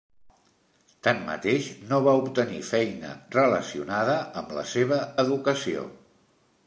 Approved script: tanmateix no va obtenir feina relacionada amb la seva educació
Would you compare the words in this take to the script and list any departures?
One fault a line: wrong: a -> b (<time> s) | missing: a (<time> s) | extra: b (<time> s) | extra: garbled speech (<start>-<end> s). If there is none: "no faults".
no faults